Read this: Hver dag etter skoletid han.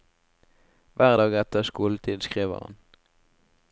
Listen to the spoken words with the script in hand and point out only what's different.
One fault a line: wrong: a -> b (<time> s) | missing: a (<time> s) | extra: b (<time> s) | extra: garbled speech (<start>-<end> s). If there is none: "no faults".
extra: skriver (2.2 s)